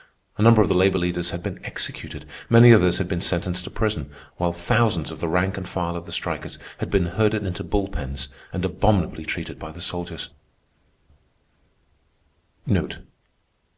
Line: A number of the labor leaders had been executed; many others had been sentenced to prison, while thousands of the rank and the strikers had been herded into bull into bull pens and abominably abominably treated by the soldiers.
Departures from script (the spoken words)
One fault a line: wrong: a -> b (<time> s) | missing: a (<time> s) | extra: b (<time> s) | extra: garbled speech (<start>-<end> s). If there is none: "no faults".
extra: file of (5.7 s)
missing: into bull (7.9 s)
missing: abominably (9.3 s)